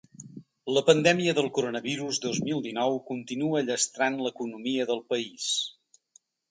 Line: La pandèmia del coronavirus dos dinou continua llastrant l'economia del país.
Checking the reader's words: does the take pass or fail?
fail